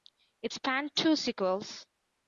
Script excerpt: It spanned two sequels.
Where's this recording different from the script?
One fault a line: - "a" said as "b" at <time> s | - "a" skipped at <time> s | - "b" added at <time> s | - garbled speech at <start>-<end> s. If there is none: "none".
none